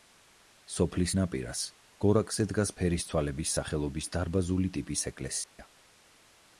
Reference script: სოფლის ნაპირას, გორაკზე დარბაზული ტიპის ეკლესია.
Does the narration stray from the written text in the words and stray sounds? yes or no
yes